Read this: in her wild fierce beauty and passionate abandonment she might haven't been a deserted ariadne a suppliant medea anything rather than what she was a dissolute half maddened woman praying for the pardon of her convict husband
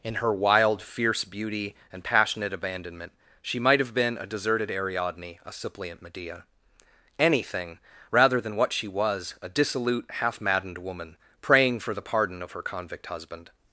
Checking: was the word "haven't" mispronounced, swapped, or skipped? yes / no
yes